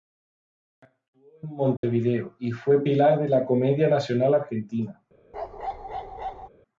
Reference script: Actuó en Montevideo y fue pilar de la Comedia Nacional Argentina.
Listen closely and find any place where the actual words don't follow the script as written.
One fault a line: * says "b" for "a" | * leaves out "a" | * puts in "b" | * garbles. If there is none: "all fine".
all fine